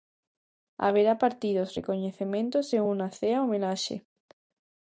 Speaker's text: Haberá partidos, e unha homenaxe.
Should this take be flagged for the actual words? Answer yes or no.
yes